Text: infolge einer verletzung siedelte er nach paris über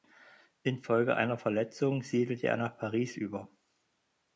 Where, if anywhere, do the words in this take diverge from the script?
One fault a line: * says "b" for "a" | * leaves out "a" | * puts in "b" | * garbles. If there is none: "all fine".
all fine